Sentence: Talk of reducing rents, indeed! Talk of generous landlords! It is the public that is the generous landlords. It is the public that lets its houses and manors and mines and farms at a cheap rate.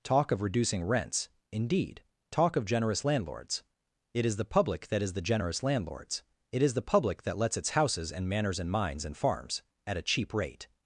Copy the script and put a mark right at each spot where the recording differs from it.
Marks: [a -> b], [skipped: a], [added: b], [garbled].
Talk of reducing rents, indeed! Talk of generous landlords! It is the public that is the generous landlords. It is the public that lets its houses and manors and mines and farms at a cheap rate.